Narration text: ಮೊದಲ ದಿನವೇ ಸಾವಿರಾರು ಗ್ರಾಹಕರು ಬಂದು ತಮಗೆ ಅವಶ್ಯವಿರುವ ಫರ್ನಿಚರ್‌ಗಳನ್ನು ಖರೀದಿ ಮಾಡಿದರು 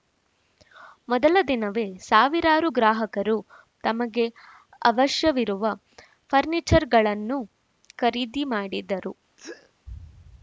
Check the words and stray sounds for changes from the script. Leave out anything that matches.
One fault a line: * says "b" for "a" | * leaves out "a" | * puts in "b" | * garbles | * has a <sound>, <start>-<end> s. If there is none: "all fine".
* leaves out "ಬಂದು"
* has a sneeze, 9.4-9.7 s